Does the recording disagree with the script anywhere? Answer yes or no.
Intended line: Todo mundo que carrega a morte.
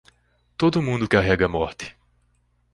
yes